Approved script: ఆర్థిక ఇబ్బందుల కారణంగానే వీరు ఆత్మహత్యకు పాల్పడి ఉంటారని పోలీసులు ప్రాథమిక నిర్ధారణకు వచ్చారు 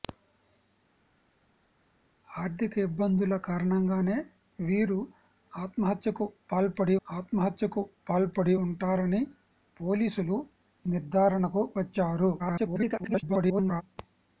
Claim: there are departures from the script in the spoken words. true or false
true